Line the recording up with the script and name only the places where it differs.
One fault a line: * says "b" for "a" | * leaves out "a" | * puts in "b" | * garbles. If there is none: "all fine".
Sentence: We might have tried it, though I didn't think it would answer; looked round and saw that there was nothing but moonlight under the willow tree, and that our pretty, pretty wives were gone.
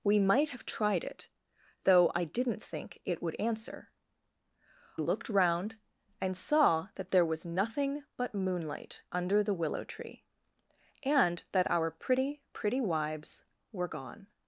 all fine